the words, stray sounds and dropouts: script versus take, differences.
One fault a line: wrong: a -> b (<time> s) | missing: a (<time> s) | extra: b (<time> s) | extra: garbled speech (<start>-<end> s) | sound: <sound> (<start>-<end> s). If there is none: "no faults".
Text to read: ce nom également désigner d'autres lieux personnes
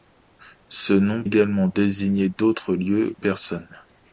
no faults